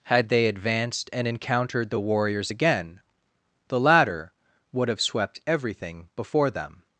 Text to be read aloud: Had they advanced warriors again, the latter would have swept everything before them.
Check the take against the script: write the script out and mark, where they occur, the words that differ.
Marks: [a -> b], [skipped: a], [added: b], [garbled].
Had they advanced [added: and encountered the] warriors again, the latter would have swept everything before them.